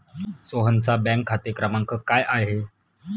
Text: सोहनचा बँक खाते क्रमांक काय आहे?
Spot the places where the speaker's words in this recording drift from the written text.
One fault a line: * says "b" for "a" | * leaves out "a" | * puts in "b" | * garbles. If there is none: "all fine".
all fine